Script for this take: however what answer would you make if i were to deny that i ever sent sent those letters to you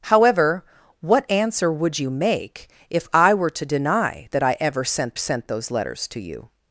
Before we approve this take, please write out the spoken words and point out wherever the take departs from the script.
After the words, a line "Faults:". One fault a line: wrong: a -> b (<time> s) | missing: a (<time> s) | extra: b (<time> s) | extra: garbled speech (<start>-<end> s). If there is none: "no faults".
however what answer would you make if i were to deny that i ever sent sent those letters to you
Faults:
no faults